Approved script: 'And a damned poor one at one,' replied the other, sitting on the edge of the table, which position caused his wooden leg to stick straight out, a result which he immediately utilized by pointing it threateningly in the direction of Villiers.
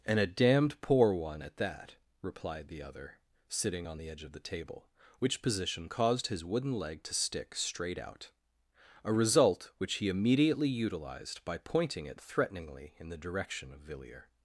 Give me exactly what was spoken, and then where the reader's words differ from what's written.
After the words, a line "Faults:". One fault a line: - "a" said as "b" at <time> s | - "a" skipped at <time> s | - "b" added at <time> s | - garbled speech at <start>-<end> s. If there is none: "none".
'And a damned poor one at that,' replied the other, sitting on the edge of the table, which position caused his wooden leg to stick straight out, a result which he immediately utilized by pointing it threateningly in the direction of Villiers.
Faults:
- "one" said as "that" at 1.6 s